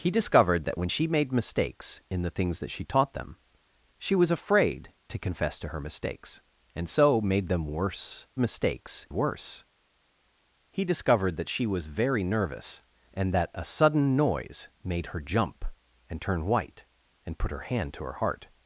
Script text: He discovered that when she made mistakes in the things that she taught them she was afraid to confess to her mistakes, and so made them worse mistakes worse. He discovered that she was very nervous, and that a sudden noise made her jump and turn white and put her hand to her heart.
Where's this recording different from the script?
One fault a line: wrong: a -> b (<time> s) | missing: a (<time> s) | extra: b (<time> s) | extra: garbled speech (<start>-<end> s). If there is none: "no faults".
no faults